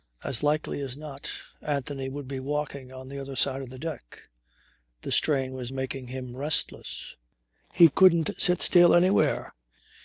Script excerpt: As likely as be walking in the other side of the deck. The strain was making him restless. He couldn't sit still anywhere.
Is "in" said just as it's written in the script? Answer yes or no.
no